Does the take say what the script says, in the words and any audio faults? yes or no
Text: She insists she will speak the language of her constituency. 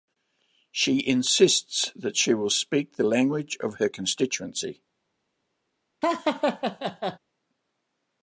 no